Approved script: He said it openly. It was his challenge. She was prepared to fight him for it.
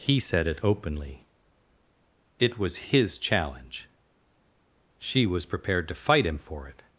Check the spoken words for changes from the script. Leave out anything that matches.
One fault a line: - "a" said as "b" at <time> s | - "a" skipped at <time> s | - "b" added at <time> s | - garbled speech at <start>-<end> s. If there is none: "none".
none